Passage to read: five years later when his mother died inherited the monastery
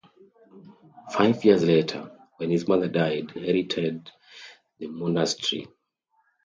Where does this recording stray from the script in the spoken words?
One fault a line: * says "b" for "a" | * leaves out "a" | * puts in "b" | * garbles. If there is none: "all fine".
all fine